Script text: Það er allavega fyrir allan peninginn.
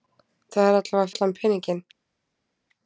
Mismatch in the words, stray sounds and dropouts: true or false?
true